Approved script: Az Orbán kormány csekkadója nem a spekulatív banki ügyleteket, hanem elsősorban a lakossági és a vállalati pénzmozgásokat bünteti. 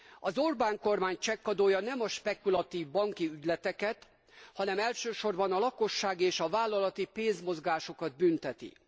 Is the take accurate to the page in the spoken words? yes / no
yes